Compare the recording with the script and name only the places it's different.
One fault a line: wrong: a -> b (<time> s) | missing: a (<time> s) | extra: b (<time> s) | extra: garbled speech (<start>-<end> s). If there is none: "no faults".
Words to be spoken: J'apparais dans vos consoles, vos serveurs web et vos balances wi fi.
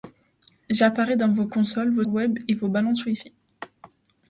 missing: serveurs (2.0 s)